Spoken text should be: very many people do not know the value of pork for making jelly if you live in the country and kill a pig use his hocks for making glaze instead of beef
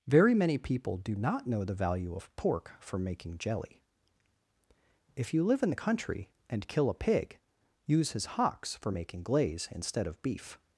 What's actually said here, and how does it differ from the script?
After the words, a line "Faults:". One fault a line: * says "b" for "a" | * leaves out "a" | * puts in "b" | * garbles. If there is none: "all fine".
very many people do not know the value of pork for making jelly if you live in the country and kill a pig use his hocks for making glaze instead of beef
Faults:
all fine